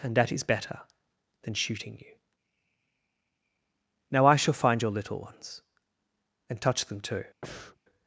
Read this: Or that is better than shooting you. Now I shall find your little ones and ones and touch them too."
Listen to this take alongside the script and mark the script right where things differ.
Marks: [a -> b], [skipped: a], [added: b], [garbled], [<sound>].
[Or -> And] that is better than shooting you. Now I shall find your little ones and [skipped: ones and] touch them too." [breath]